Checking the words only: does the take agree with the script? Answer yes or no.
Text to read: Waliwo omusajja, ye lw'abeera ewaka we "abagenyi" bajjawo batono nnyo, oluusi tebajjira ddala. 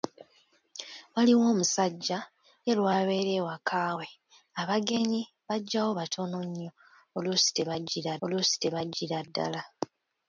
no